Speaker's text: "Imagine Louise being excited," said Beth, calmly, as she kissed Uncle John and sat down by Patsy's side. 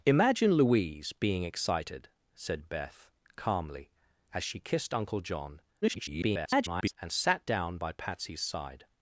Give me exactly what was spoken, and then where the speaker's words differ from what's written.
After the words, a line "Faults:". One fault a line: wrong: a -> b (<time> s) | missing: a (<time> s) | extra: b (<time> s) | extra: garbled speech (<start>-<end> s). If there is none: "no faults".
"Imagine Louise being excited," said Beth, calmly, as she kissed Uncle John [garbled] and sat down by Patsy's side.
Faults:
extra: garbled speech (5.8-6.9 s)